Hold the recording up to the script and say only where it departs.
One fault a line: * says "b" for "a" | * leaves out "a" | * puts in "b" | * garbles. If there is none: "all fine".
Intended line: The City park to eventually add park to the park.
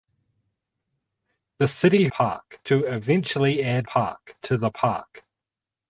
all fine